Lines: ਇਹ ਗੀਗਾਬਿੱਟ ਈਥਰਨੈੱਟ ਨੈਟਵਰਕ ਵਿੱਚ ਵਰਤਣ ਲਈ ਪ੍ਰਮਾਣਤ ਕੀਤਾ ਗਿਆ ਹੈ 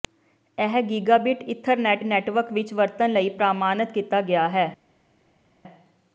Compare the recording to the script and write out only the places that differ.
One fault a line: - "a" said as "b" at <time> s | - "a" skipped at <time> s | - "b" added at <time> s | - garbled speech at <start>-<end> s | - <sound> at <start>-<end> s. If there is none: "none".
none